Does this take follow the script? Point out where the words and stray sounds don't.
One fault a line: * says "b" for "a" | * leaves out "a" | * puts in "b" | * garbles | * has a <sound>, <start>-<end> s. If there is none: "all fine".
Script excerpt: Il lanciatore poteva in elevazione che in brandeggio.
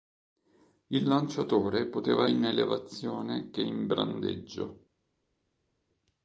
all fine